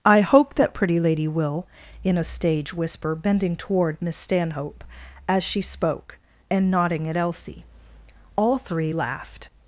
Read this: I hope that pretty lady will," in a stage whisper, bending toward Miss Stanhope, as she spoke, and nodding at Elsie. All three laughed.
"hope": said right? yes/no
yes